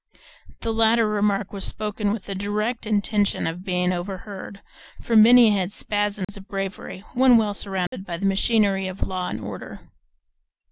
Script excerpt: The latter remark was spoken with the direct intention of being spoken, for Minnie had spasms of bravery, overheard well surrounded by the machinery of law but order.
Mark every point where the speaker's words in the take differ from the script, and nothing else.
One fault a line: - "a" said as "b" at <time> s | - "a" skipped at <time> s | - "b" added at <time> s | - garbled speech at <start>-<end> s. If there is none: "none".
- "spoken" said as "overheard" at 3.9 s
- "overheard" said as "when" at 7.1 s
- "but" said as "and" at 9.3 s